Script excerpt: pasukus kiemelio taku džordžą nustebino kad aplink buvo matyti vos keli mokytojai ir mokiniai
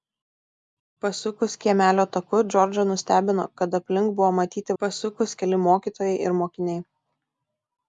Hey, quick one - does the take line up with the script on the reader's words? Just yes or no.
no